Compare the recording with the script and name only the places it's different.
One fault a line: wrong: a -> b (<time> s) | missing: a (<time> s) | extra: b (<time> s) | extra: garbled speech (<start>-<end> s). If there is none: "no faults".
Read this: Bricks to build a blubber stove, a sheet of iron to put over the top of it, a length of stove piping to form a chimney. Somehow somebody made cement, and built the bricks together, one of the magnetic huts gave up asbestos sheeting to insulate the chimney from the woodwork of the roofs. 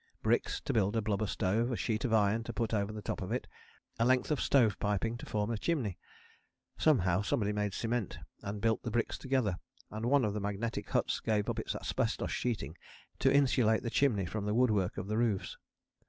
extra: and (9.9 s)
extra: its (11.6 s)